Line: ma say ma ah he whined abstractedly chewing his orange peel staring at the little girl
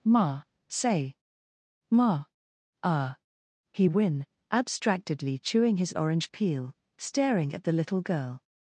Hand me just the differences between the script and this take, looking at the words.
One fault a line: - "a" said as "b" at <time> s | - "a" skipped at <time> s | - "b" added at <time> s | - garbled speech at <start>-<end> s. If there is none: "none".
- "whined" said as "whin" at 3.8 s